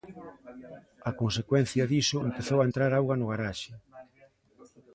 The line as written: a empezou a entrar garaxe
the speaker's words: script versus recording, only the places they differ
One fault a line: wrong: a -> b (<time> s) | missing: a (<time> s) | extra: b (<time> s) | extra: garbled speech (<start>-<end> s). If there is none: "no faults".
extra: consecuencia diso (1.2 s)
extra: auga no (2.9 s)